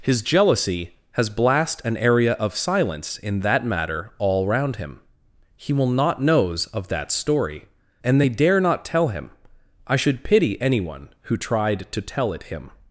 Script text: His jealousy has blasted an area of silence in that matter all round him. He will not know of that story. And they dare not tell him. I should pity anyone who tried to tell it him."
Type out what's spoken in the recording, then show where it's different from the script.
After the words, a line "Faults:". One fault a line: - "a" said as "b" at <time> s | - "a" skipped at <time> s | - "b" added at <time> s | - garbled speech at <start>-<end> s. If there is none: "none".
His jealousy has blast an area of silence in that matter all round him. He will not knows of that story. And they dare not tell him. I should pity anyone who tried to tell it him."
Faults:
- "blasted" said as "blast" at 1.3 s
- "know" said as "knows" at 6.2 s